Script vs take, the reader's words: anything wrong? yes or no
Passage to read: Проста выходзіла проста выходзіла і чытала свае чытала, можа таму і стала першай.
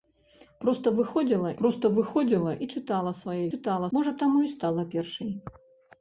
no